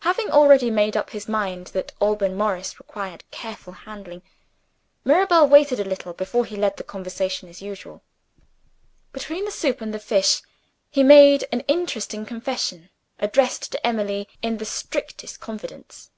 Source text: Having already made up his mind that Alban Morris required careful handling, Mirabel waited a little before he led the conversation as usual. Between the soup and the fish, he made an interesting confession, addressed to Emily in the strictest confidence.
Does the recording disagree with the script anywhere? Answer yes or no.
no